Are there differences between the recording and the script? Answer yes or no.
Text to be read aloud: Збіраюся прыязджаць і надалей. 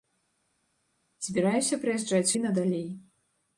no